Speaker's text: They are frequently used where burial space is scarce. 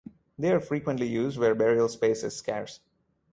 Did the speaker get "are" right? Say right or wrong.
right